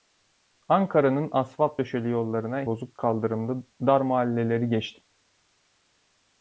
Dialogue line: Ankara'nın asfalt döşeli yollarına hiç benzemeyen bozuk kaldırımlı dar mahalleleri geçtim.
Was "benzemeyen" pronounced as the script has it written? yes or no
no